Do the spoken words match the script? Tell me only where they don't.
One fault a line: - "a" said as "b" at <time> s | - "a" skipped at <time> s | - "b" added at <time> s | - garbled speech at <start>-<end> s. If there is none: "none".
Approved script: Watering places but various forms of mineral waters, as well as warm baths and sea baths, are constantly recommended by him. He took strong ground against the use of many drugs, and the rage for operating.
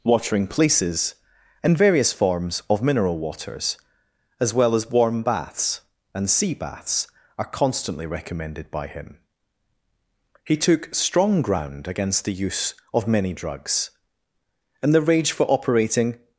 - "but" said as "and" at 1.6 s